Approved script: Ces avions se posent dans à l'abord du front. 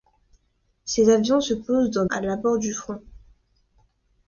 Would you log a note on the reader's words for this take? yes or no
no